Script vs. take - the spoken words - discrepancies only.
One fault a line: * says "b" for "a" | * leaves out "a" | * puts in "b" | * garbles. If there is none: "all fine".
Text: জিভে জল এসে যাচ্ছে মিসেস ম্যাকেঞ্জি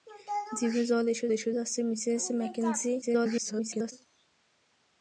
* puts in "এসে"
* garbles